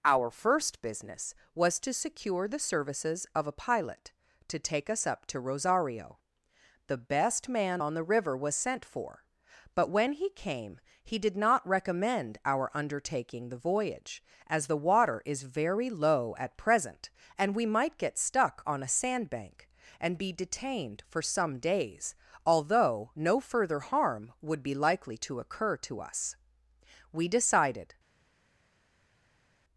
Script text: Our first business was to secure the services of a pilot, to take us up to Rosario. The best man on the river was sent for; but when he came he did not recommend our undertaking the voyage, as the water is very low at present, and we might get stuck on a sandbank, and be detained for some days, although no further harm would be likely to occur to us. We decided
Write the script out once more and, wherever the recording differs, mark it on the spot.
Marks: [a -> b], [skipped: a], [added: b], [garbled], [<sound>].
Our first business was to secure the services of a pilot, to take us up to Rosario. The best man on the river was sent for; but when he came he did not recommend our undertaking the voyage, as the water is very low at present, and we might get stuck on a sandbank, and be detained for some days, although no further harm would be likely to occur to us. We decided